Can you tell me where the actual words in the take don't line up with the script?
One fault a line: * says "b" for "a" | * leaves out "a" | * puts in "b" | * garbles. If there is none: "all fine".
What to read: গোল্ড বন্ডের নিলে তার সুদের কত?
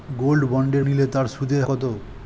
all fine